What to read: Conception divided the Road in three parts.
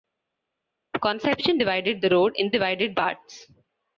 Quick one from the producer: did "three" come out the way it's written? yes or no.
no